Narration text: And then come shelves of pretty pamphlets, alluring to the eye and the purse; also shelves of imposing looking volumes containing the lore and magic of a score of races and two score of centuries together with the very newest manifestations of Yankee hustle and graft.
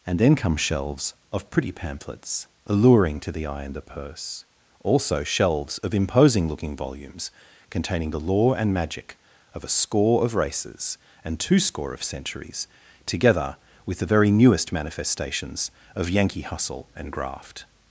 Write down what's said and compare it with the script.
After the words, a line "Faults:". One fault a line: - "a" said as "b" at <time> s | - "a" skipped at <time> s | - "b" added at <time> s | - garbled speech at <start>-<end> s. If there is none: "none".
And then come shelves of pretty pamphlets, alluring to the eye and the purse; also shelves of imposing looking volumes containing the lore and magic of a score of races and two score of centuries together with the very newest manifestations of Yankee hustle and graft.
Faults:
none